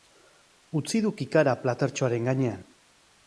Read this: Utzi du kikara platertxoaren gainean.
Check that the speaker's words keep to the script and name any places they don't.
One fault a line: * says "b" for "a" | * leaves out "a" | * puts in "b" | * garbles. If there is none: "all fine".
all fine